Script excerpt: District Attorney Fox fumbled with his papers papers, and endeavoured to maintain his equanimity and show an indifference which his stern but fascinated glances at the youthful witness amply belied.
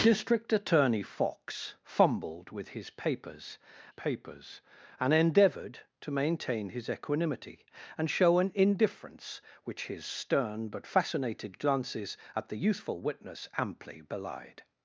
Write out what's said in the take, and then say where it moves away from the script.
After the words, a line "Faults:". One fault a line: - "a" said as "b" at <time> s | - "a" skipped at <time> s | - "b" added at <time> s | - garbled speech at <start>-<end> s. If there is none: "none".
District Attorney Fox fumbled with his papers papers, and endeavoured to maintain his equanimity and show an indifference which his stern but fascinated glances at the youthful witness amply belied.
Faults:
none